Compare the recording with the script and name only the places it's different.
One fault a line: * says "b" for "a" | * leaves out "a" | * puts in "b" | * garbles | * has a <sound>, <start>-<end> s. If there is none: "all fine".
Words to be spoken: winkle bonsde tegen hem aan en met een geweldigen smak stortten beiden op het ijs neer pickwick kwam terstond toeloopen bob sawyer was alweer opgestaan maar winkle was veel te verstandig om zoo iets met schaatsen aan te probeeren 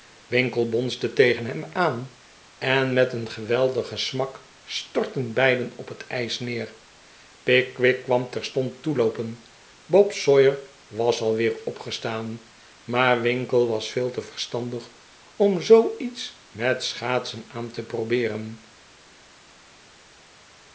all fine